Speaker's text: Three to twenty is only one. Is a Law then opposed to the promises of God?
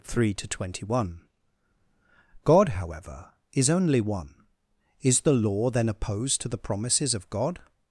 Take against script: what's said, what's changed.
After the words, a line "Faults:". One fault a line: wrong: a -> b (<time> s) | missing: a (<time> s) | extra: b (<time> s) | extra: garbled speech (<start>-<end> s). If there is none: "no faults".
Three to twenty one God, however, is only one. Is the Law then opposed to the promises of God?
Faults:
extra: one God however (1.0 s)
wrong: a -> the (5.2 s)